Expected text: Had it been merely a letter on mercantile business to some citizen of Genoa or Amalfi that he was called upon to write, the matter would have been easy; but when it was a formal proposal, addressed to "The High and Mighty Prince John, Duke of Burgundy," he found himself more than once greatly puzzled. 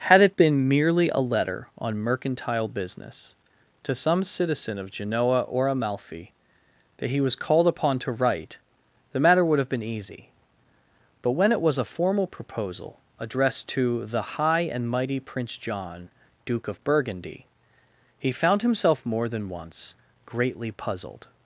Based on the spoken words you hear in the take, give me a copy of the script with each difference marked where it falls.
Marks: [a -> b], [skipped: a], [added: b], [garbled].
Had it been merely a letter on mercantile business to some citizen of Genoa or Amalfi that he was called upon to write, the matter would have been easy; but when it was a formal proposal, addressed to "The High and Mighty Prince John, Duke of Burgundy," he found himself more than once greatly puzzled.